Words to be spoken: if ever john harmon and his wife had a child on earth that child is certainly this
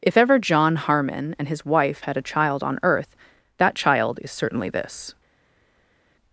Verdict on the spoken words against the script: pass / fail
pass